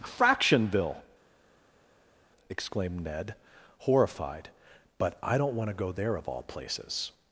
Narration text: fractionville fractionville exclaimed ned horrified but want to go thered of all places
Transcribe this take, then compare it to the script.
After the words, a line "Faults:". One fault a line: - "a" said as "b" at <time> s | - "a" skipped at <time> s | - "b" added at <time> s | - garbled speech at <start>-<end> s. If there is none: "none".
fractionville exclaimed ned horrified but i don't want to go there of all places
Faults:
- "fractionville" skipped at 1.0 s
- "i don't" added at 5.2 s
- "thered" said as "there" at 5.9 s